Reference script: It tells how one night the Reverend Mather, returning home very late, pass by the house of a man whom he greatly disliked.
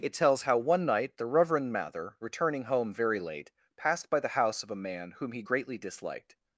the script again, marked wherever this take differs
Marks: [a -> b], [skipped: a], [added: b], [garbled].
It tells how one night the Reverend Mather, returning home very late, [pass -> passed] by the house of a man whom he greatly disliked.